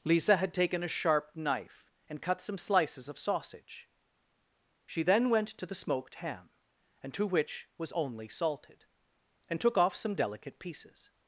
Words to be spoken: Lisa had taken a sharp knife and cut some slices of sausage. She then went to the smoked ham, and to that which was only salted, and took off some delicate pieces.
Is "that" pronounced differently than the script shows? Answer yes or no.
yes